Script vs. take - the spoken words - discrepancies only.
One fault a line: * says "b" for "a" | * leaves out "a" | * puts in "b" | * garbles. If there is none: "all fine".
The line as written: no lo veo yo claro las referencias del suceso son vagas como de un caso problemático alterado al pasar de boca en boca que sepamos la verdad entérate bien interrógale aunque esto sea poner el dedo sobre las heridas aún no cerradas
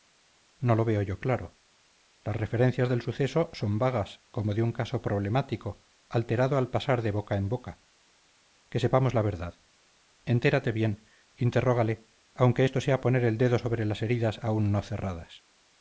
all fine